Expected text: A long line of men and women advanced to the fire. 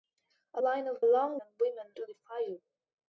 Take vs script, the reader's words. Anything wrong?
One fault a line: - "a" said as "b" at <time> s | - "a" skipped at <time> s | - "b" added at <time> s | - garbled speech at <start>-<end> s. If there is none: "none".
- "long" skipped at 0.6 s
- "men" said as "long" at 1.0 s
- "advanced" skipped at 1.9 s